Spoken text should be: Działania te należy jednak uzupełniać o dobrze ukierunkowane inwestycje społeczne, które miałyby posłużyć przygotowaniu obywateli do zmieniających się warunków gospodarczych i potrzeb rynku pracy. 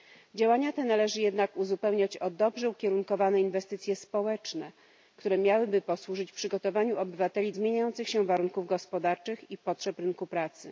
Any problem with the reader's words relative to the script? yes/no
yes